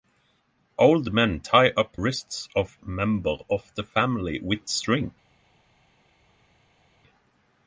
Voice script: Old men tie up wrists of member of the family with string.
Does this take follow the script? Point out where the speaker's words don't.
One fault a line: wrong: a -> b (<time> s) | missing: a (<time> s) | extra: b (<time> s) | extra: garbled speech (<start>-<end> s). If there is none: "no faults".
no faults